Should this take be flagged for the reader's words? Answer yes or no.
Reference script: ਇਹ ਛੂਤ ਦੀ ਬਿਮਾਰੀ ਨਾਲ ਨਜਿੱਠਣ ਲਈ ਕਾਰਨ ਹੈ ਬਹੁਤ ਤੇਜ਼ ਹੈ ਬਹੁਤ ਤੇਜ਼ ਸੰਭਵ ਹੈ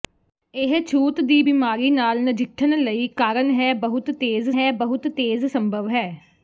no